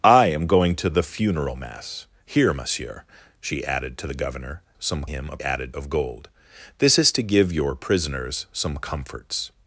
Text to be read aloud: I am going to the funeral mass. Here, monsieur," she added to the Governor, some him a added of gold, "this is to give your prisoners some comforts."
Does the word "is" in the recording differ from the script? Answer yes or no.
no